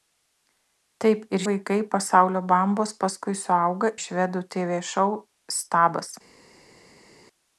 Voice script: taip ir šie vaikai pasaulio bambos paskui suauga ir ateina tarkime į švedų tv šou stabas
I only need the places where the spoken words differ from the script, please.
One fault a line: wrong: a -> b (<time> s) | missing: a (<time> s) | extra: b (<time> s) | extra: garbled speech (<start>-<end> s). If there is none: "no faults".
missing: šie (1.4 s)
missing: ir ateina tarkime (3.9 s)